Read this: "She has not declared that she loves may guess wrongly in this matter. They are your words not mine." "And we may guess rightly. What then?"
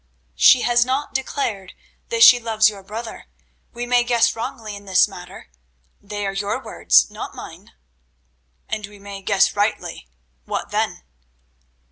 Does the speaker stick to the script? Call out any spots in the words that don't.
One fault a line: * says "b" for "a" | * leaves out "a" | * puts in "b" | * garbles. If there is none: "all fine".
* puts in "your brother we"